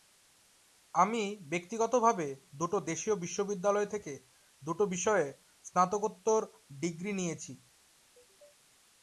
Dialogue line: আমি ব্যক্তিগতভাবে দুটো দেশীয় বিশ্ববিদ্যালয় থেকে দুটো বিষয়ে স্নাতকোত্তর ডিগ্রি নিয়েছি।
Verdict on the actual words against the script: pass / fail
pass